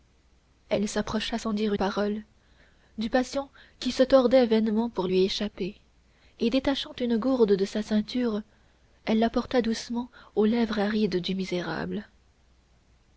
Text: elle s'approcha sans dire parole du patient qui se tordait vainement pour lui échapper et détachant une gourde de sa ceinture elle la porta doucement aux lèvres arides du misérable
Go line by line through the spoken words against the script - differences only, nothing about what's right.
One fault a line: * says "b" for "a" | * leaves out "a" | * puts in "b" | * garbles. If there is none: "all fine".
all fine